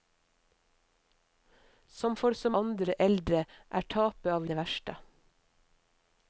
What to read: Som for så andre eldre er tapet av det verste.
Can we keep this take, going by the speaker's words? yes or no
yes